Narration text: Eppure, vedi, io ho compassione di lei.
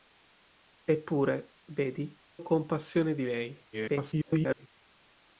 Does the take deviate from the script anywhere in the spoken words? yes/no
yes